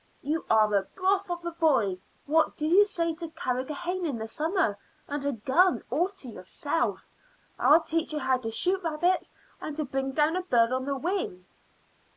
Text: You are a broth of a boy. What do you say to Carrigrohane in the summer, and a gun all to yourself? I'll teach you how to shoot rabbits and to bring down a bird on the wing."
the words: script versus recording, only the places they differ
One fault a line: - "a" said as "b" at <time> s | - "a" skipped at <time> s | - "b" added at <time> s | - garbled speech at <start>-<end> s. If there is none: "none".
none